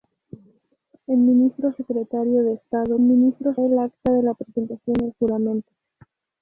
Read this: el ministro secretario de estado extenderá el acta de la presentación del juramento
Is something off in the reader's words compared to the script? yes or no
yes